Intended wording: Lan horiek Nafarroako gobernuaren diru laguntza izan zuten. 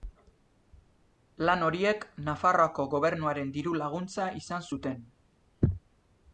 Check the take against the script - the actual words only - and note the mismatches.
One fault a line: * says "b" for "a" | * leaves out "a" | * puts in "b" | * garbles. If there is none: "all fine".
all fine